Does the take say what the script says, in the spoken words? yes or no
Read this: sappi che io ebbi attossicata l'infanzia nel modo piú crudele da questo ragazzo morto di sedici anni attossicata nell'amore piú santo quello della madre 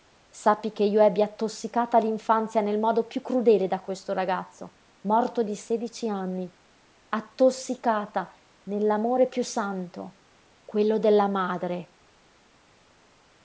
yes